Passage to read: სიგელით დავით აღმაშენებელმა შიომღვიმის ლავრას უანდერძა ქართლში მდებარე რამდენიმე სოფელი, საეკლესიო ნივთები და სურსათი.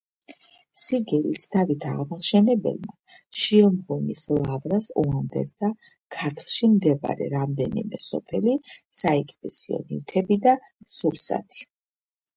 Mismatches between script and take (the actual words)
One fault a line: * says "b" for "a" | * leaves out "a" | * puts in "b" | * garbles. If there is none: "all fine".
all fine